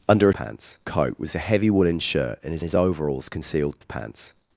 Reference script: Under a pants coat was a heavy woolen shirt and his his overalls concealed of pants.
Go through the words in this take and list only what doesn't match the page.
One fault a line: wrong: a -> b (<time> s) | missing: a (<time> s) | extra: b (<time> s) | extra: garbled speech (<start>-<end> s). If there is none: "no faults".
no faults